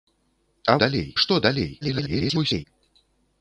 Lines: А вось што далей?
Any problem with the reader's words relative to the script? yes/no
yes